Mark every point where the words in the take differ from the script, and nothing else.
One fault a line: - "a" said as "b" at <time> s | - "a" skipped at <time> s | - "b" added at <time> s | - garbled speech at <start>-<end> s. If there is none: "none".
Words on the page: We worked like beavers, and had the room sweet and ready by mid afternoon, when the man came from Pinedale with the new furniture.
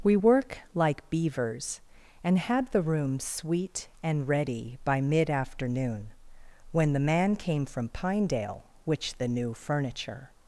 - "worked" said as "work" at 0.1 s
- "with" said as "which" at 8.8 s